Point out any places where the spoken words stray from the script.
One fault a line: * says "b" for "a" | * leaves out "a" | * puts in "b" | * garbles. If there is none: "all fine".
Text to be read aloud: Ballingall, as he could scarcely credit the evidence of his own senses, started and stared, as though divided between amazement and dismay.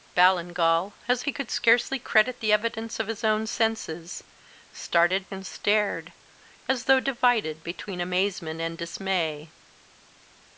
all fine